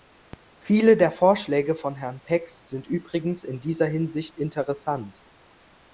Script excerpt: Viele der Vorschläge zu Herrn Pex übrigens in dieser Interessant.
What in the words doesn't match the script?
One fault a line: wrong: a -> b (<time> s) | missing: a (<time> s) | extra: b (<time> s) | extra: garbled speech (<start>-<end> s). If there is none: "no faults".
wrong: zu -> von (1.8 s)
extra: sind (2.7 s)
extra: Hinsicht (3.9 s)